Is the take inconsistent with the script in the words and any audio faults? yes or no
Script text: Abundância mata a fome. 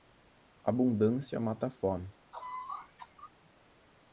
yes